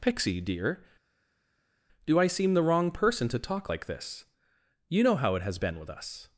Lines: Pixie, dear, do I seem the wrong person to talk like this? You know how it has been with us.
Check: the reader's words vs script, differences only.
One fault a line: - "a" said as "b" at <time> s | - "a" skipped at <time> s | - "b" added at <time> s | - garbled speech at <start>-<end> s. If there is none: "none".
none